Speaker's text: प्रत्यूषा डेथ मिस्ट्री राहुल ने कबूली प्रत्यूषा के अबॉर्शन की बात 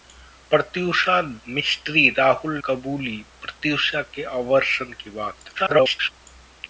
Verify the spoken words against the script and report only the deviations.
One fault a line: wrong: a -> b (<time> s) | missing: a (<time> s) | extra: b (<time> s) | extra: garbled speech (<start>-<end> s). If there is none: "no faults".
missing: डेथ (1.2 s)
missing: ने (2.6 s)
extra: garbled speech (5.6-6.1 s)